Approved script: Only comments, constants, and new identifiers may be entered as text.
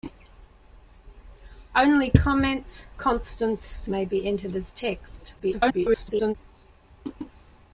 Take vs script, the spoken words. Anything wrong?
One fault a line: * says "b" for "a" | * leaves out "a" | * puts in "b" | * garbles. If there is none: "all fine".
* leaves out "and new identifiers"
* garbles